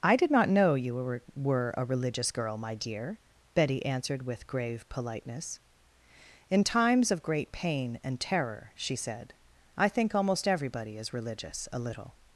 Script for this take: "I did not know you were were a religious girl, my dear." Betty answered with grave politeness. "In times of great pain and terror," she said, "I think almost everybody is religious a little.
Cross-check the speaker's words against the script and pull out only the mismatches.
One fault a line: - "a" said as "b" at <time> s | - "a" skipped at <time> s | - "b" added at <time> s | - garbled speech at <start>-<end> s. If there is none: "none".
none